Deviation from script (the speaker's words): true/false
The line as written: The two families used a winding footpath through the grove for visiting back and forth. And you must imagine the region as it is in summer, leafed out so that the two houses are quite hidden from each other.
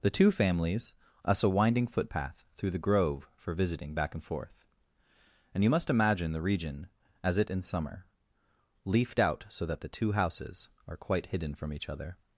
true